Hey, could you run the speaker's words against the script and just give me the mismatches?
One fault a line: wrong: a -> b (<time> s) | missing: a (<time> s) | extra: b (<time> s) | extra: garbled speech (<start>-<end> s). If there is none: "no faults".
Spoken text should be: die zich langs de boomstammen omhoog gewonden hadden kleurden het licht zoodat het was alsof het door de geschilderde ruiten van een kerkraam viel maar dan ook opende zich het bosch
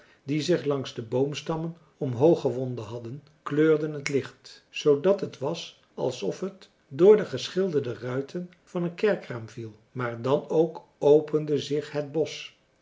no faults